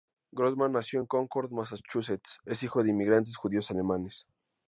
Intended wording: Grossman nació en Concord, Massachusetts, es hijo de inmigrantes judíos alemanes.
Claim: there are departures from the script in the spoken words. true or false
false